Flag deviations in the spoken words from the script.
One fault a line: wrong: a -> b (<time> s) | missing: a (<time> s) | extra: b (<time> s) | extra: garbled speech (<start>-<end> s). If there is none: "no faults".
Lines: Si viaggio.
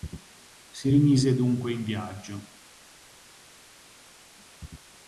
extra: rimise dunque in (0.9 s)